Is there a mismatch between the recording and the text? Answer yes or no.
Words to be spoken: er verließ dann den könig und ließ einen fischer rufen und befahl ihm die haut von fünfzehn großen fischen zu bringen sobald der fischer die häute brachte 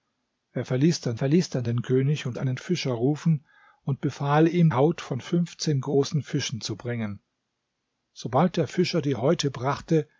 yes